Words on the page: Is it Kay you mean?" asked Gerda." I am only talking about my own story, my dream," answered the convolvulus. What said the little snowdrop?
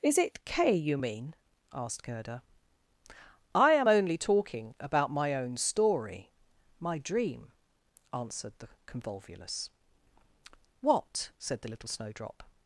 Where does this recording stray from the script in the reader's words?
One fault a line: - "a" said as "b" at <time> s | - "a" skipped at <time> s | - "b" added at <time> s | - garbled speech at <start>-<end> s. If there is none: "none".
none